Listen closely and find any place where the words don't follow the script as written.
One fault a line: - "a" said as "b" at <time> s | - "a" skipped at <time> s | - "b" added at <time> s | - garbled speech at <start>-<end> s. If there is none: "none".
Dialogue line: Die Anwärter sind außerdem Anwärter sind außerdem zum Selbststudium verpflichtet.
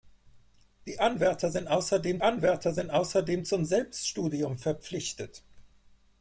none